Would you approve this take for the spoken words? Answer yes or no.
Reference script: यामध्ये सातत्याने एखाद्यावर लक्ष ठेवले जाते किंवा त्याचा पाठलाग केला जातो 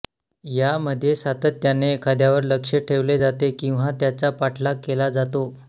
yes